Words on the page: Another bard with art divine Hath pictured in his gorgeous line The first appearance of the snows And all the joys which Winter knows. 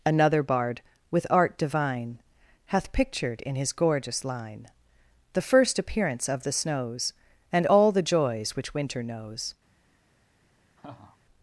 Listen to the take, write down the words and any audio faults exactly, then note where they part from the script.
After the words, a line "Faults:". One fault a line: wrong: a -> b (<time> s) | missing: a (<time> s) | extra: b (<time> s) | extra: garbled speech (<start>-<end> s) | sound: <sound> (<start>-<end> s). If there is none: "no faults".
Another bard with art divine Hath pictured in his gorgeous line The first appearance of the snows And all the joys which Winter knows.
Faults:
sound: laugh (10.8-11.2 s)